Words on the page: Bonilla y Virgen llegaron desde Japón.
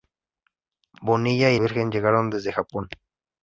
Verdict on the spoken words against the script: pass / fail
pass